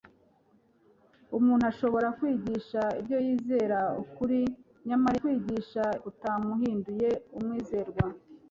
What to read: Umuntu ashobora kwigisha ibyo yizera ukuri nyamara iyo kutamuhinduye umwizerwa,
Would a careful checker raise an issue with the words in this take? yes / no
yes